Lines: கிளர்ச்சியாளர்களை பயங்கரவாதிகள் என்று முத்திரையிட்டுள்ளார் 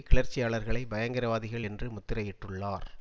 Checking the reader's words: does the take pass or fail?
pass